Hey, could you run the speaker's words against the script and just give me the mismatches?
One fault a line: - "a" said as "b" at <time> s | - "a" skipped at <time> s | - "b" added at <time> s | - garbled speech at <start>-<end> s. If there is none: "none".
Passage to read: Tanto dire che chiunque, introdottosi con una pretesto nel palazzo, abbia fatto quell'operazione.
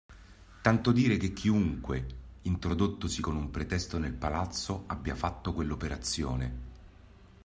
- "una" said as "un" at 3.3 s